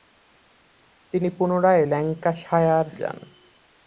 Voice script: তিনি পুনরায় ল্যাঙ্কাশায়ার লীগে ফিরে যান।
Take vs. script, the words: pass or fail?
fail